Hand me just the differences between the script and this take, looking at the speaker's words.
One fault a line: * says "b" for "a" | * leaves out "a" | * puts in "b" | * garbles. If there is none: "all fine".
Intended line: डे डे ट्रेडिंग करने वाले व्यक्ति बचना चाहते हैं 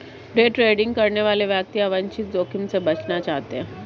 * leaves out "डे"
* puts in "अवांछित जोखिम से"